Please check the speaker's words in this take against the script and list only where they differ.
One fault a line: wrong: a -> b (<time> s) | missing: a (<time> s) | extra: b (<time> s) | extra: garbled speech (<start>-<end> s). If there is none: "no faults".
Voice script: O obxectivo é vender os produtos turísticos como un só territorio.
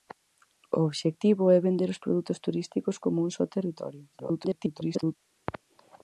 extra: garbled speech (4.1-5.2 s)